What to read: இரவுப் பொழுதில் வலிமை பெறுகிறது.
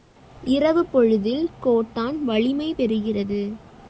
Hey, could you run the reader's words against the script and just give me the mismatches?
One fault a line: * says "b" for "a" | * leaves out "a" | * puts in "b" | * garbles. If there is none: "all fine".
* puts in "கோட்டான்"